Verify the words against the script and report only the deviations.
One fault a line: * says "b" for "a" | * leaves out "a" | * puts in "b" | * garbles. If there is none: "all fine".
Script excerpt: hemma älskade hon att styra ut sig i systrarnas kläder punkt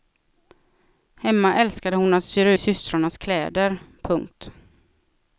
* leaves out "ut sig"